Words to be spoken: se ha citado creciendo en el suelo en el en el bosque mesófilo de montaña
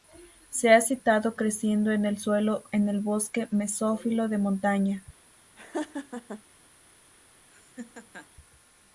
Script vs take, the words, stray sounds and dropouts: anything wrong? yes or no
yes